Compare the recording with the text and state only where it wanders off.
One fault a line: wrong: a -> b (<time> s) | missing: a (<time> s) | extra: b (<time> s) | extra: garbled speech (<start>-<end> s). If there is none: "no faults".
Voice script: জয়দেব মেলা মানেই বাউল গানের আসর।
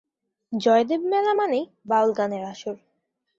no faults